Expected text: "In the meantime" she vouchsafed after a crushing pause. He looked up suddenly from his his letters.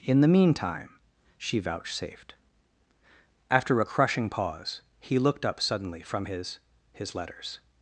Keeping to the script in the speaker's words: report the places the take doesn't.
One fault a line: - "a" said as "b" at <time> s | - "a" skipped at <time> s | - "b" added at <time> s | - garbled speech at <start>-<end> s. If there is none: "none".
none